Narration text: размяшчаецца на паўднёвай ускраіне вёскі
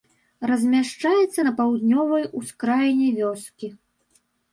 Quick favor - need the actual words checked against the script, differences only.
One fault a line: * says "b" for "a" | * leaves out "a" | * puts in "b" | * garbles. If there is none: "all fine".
all fine